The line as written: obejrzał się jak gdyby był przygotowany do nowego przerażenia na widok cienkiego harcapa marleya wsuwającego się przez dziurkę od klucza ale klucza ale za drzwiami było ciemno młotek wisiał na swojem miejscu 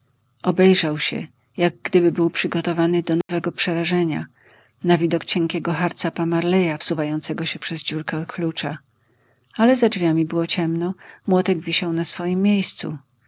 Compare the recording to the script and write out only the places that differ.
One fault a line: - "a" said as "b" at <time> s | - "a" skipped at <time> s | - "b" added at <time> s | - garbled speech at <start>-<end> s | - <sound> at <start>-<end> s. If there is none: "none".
- dropout at 3.2-3.3 s
- "klucza ale" skipped at 9.7 s